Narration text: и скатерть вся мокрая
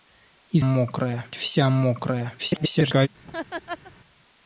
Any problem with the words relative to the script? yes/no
yes